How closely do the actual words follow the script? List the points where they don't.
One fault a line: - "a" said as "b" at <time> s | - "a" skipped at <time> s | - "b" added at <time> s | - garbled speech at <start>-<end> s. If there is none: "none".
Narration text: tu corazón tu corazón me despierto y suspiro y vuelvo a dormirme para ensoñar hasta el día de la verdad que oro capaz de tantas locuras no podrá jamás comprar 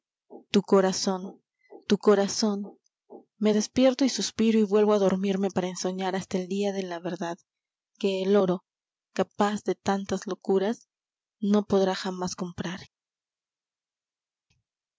- "el" added at 8.2 s